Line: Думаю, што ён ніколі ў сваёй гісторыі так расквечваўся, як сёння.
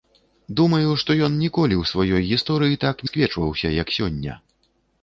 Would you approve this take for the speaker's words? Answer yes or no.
yes